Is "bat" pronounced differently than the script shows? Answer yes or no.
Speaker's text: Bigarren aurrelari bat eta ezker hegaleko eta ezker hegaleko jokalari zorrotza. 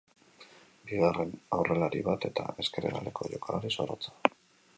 no